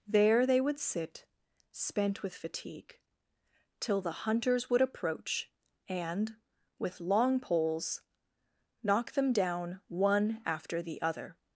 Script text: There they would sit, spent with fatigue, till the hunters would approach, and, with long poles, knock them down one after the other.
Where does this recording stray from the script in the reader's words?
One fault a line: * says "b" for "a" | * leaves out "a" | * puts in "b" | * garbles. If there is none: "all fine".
all fine